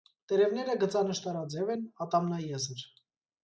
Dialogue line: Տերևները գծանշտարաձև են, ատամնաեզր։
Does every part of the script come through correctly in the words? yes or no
yes